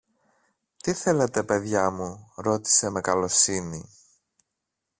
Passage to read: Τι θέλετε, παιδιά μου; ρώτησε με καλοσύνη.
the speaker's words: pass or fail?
pass